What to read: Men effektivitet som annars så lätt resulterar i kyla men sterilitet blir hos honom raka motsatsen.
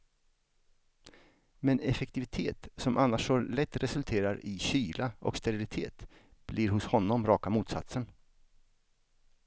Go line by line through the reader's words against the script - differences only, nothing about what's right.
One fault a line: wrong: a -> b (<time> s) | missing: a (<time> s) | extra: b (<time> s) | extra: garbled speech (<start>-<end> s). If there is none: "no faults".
wrong: men -> och (5.2 s)